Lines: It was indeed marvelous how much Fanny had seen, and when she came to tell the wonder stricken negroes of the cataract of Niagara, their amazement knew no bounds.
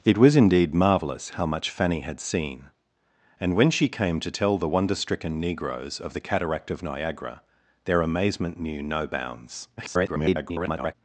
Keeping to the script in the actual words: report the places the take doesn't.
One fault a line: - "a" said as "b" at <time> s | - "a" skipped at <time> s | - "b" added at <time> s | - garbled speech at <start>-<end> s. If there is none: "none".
- garbled speech at 9.8-10.9 s